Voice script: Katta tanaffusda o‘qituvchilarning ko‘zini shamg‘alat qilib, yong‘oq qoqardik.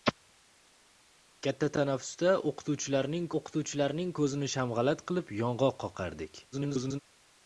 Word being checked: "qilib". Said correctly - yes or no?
yes